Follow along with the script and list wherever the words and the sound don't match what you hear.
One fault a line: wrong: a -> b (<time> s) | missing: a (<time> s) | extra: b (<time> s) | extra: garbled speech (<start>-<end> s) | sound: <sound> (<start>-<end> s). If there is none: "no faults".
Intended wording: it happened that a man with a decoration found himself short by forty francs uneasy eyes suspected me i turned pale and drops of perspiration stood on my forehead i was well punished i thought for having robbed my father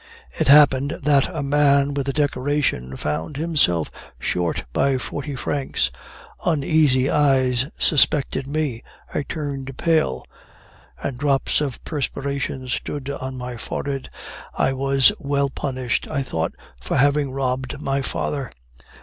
no faults